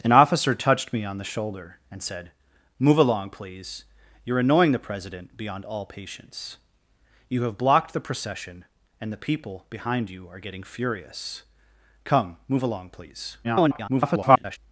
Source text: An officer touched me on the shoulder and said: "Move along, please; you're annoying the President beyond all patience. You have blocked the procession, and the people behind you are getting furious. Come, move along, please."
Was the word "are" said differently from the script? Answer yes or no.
no